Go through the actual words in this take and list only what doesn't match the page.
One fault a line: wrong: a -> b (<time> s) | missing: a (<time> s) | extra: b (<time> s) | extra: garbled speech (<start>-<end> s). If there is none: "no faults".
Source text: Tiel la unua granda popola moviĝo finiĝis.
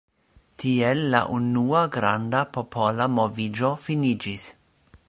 no faults